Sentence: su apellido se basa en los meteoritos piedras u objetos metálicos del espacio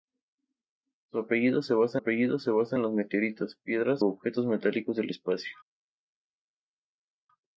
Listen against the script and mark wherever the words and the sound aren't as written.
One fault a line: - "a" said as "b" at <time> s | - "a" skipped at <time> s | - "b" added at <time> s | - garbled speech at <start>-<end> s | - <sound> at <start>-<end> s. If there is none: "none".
- "apellido se basa" added at 1.9 s
- "u" skipped at 4.0 s